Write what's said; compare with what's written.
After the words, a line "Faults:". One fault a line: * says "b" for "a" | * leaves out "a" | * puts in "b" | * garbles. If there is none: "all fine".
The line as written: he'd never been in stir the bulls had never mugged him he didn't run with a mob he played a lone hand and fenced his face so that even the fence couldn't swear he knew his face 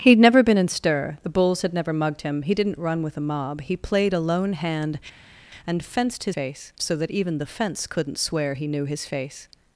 he'd never been in stir the bulls had never mugged him he didn't run with a mob he played a lone hand and fenced his face so that even the fence couldn't swear he knew his face
Faults:
all fine